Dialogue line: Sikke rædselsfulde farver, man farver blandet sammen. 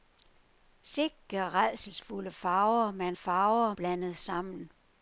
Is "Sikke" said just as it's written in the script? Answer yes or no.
yes